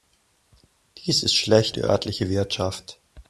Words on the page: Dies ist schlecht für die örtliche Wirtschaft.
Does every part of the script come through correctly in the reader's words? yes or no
no